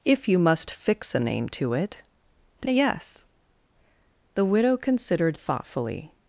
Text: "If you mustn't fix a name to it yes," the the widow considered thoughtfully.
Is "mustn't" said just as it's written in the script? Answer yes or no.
no